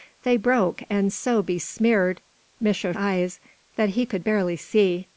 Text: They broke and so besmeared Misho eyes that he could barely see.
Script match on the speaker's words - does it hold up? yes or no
yes